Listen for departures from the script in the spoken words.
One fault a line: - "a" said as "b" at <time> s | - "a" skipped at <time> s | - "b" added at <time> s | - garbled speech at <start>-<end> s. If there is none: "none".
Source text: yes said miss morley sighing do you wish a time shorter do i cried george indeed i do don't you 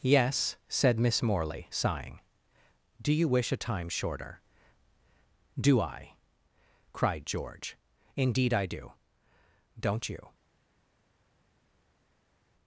none